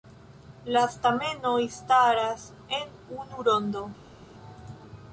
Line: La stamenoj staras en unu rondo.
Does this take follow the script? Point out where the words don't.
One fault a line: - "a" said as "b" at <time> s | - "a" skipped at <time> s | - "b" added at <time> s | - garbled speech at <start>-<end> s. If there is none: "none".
none